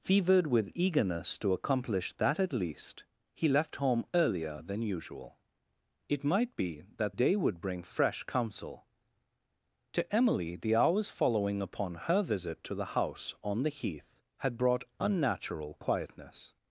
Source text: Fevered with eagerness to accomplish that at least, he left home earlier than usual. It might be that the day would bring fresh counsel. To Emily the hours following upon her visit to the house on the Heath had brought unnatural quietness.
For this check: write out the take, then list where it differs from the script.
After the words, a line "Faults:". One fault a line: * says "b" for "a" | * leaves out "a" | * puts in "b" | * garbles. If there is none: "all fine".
Fevered with eagerness to accomplish that at least, he left home earlier than usual. It might be that day would bring fresh counsel. To Emily the hours following upon her visit to the house on the Heath had brought unnatural quietness.
Faults:
* leaves out "the"